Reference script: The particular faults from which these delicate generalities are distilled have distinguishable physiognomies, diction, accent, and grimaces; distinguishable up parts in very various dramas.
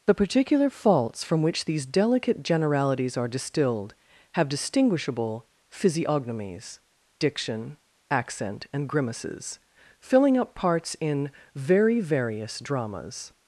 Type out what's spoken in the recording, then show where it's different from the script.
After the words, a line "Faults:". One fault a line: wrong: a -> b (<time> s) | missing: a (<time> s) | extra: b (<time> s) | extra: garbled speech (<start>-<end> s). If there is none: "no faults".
The particular faults from which these delicate generalities are distilled have distinguishable physiognomies, diction, accent, and grimaces; filling up parts in very various dramas.
Faults:
wrong: distinguishable -> filling (10.0 s)